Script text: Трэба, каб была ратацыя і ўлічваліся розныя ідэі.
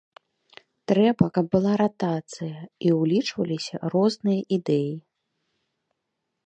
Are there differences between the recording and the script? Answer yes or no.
no